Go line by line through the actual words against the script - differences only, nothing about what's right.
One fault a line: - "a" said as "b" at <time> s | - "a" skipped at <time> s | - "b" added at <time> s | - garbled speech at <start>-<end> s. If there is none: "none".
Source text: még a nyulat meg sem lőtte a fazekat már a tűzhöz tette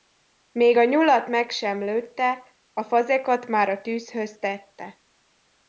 none